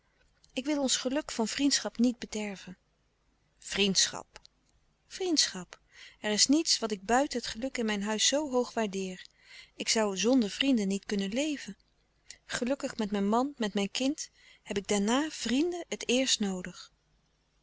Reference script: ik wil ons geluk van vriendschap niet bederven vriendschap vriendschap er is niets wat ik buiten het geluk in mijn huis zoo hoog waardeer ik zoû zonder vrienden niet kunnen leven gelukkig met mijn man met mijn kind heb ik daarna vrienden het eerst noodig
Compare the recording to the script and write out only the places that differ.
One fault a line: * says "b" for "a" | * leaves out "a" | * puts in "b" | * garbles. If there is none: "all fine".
all fine